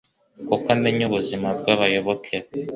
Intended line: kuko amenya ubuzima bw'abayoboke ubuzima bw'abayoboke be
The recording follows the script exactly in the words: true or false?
false